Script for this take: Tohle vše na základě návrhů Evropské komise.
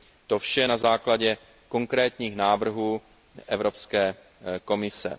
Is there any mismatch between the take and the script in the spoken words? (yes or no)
yes